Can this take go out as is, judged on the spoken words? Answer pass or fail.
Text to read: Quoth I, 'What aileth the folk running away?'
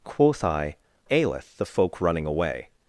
fail